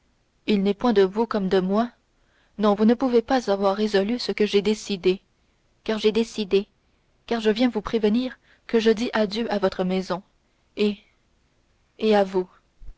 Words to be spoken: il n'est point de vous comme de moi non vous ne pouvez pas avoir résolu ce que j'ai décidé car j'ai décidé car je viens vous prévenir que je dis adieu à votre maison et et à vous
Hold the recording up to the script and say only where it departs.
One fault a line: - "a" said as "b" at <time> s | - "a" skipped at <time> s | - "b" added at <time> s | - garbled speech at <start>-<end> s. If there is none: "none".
none